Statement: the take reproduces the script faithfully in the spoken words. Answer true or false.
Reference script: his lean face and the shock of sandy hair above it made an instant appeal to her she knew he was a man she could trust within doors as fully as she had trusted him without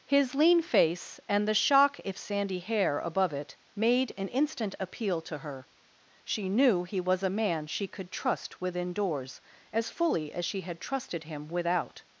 false